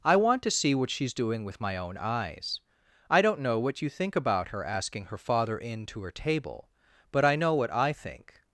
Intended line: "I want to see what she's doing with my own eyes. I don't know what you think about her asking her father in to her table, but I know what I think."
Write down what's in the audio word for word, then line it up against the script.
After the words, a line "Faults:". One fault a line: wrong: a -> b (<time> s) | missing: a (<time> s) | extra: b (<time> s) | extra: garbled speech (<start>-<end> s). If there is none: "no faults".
"I want to see what she's doing with my own eyes. I don't know what you think about her asking her father in to her table, but I know what I think."
Faults:
no faults